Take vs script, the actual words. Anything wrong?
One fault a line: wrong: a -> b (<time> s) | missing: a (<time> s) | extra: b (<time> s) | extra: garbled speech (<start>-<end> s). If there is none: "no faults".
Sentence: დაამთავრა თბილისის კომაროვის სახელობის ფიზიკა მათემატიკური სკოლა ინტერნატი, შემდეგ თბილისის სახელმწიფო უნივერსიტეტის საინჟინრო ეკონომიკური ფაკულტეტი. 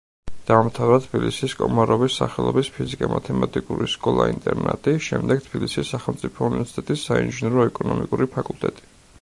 no faults